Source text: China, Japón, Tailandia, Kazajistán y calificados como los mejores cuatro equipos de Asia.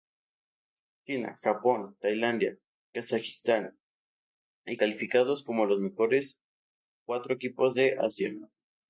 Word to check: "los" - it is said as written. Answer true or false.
true